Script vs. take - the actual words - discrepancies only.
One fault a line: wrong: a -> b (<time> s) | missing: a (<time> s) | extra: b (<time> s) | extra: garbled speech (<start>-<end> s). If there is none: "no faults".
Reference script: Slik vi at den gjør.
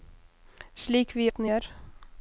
no faults